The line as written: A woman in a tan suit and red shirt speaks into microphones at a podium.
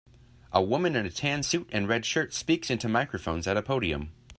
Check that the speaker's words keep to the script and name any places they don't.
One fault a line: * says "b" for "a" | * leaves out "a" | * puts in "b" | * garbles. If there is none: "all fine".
all fine